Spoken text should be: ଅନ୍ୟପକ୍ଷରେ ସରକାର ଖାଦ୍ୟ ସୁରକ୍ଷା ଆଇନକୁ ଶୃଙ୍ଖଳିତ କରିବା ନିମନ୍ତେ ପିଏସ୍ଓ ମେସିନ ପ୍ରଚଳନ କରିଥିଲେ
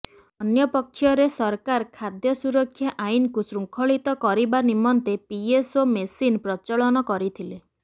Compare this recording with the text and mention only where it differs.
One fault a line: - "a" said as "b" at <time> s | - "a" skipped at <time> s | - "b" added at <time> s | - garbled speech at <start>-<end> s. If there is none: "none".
none